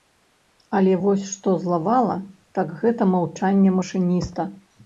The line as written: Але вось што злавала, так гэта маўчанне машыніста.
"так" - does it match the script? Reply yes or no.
yes